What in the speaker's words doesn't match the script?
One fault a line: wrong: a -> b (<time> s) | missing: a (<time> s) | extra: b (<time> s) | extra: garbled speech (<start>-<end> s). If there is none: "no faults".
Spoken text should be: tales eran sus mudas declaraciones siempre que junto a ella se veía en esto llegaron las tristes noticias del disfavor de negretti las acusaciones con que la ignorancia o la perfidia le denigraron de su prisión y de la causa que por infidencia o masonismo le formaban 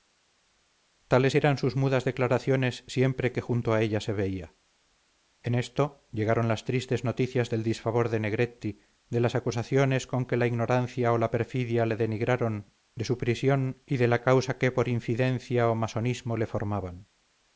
extra: de (9.1 s)